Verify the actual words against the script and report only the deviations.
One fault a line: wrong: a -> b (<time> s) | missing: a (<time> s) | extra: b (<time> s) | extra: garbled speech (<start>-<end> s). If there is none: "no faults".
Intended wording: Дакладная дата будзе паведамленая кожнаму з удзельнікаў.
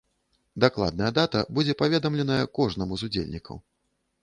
no faults